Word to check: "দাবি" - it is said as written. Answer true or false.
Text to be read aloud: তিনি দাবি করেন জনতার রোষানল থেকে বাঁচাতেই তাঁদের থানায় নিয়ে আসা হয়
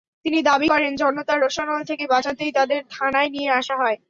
true